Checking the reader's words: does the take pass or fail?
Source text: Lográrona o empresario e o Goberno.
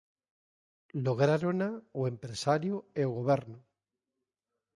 pass